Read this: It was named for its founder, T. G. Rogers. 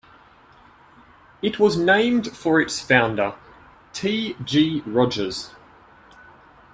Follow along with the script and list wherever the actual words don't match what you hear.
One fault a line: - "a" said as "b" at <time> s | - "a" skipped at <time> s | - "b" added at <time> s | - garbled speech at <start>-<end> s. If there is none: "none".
none